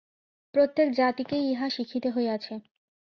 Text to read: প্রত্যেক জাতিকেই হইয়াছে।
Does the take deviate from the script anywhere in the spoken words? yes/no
yes